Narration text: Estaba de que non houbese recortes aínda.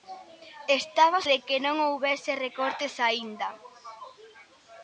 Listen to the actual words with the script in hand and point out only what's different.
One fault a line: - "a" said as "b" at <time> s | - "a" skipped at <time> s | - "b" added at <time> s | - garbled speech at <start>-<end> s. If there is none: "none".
none